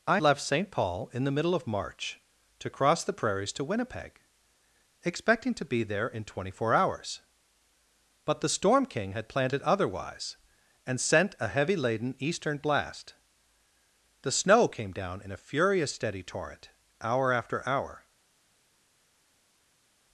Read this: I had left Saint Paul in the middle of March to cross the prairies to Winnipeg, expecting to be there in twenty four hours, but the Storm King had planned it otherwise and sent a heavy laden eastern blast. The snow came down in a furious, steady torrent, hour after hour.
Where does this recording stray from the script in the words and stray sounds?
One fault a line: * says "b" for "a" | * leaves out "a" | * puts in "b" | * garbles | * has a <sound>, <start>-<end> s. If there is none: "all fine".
* leaves out "had"